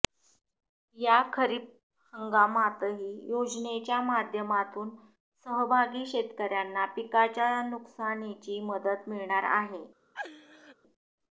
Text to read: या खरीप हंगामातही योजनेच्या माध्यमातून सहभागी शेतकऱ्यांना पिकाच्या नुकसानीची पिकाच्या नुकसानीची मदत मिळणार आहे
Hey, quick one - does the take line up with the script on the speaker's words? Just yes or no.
no